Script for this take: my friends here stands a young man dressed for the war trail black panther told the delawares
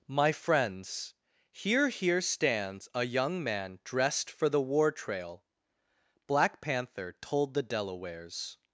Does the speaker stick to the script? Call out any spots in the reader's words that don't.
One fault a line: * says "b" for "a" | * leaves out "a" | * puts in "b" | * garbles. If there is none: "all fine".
* puts in "here"